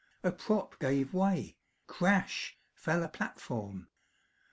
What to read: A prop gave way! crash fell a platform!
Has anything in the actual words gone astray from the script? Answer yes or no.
no